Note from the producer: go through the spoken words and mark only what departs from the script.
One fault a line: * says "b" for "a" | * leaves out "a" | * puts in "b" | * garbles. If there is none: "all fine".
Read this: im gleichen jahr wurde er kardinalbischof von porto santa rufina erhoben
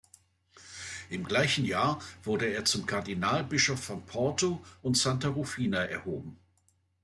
* puts in "zum"
* puts in "und"